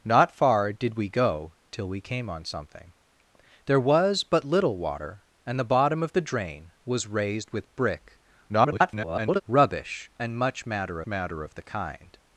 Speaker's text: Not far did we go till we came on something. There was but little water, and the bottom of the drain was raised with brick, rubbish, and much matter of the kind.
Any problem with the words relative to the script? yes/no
yes